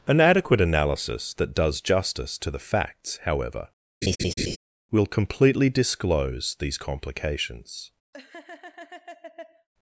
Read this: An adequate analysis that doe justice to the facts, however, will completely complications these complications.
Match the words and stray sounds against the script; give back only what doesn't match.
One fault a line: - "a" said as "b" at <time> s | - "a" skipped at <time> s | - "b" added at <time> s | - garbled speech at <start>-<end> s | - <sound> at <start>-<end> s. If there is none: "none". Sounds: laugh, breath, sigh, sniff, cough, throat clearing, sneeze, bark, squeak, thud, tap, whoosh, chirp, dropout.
- "doe" said as "does" at 1.5 s
- laugh at 4.0-4.6 s
- "complications" said as "disclose" at 5.7 s
- laugh at 8.1-9.7 s